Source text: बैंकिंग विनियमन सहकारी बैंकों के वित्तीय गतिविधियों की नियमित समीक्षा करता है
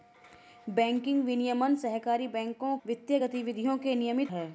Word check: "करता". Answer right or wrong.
wrong